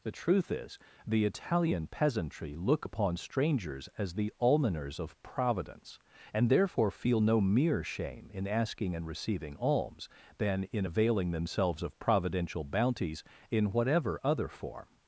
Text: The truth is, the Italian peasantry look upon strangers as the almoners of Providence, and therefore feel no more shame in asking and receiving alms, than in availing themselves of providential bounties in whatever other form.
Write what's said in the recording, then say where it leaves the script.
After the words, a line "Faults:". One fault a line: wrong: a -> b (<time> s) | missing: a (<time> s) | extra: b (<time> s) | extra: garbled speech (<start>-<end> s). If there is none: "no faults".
The truth is, the Italian peasantry look upon strangers as the almoners of Providence, and therefore feel no mere shame in asking and receiving alms, than in availing themselves of providential bounties in whatever other form.
Faults:
wrong: more -> mere (7.4 s)